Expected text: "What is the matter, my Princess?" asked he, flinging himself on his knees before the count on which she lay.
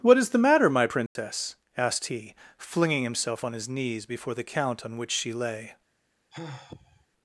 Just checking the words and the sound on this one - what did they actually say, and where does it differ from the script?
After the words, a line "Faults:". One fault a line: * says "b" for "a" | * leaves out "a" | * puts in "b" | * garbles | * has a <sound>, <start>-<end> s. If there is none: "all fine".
"What is the matter, my Princess?" asked he, flinging himself on his knees before the count on which she lay.
Faults:
* has a dropout, 1.1-1.2 s
* has a sigh, 6.3-7.1 s